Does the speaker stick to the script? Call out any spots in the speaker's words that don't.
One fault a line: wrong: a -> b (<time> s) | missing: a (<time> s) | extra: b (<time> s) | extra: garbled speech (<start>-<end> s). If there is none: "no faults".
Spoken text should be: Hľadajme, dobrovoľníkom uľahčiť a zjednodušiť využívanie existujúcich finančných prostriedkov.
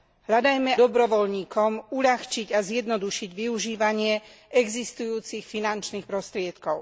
no faults